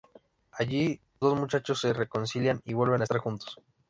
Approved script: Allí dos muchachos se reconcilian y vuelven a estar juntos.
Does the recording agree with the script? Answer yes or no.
yes